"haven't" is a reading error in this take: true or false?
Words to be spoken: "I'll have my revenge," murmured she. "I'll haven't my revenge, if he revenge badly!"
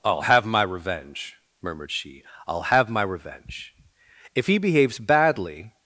true